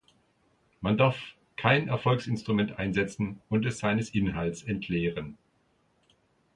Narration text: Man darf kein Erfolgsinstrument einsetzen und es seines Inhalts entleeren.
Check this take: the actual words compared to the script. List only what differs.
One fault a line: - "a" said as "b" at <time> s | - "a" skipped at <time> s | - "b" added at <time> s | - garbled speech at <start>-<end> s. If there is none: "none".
none